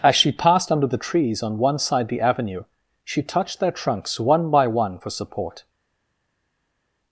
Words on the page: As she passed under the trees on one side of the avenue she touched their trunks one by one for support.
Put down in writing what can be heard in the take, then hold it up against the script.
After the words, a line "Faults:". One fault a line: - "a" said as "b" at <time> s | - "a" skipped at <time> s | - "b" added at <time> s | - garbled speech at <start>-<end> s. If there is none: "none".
As she passed under the trees on one side the avenue she touched their trunks one by one for support.
Faults:
- "of" skipped at 2.1 s